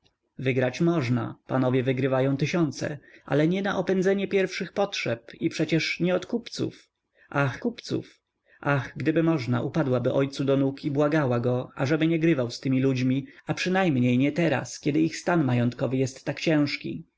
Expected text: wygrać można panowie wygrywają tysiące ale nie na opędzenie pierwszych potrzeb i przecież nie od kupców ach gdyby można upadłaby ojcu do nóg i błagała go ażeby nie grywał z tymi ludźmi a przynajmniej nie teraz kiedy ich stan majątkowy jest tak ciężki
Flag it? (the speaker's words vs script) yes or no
yes